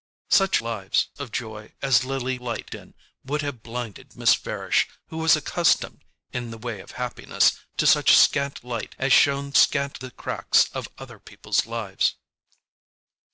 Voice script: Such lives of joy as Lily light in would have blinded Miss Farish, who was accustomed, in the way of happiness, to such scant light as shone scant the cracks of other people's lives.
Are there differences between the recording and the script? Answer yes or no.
no